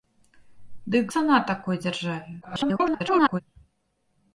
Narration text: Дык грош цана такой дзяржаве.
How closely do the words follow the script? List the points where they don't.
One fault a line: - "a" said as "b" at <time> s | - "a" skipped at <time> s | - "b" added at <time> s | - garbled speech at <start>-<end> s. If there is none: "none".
- "грош" skipped at 1.1 s
- garbled speech at 2.4-3.4 s